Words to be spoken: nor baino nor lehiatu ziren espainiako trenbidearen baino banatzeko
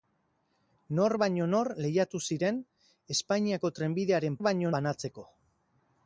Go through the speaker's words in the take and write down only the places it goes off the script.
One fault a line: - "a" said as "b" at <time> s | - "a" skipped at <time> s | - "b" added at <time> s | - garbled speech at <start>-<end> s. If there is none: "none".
none